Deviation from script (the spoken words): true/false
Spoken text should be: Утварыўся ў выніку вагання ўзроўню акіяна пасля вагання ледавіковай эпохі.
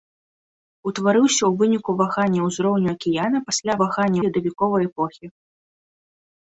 false